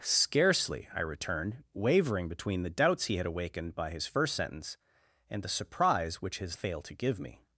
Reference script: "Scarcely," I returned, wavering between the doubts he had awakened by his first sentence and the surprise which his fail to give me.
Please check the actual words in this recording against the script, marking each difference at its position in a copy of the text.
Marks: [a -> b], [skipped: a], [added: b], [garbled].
"Scarcely," I returned, wavering between the doubts he had awakened by his first sentence and the surprise which his fail to give me.